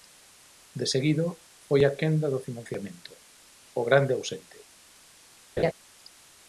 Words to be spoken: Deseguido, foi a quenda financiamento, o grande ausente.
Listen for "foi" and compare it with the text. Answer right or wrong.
right